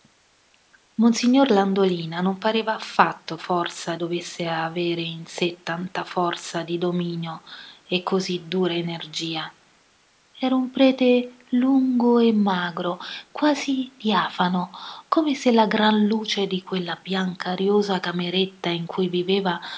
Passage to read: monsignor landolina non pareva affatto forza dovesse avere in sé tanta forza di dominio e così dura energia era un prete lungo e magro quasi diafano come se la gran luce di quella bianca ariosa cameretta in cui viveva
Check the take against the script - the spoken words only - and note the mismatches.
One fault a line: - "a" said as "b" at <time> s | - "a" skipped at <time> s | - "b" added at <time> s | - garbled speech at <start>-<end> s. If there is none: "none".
none